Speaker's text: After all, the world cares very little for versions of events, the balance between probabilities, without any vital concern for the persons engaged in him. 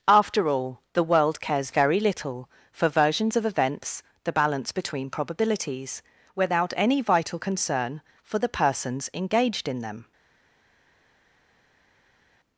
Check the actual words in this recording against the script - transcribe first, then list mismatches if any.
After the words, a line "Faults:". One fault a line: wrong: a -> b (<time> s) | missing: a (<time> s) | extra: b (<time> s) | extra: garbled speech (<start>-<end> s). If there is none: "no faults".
After all, the world cares very little for versions of events, the balance between probabilities, without any vital concern for the persons engaged in them.
Faults:
wrong: him -> them (9.8 s)